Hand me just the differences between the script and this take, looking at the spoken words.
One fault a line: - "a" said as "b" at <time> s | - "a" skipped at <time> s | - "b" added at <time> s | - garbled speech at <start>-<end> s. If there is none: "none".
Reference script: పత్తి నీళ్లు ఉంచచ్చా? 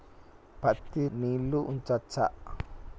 none